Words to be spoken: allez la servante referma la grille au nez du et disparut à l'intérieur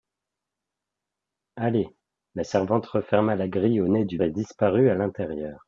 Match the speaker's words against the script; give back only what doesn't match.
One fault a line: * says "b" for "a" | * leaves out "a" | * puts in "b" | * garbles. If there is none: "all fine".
all fine